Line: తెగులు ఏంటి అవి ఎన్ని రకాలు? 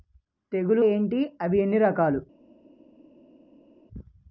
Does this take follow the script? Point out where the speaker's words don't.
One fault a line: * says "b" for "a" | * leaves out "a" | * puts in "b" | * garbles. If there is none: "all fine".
all fine